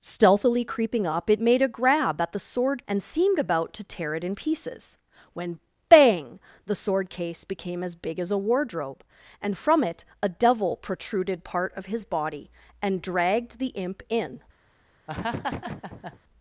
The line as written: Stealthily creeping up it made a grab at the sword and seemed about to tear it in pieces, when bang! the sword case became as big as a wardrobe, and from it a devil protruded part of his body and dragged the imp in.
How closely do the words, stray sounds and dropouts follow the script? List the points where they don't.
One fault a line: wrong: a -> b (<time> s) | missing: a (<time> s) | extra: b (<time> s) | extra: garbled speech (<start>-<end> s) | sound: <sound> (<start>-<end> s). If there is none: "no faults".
sound: laugh (15.1-16.2 s)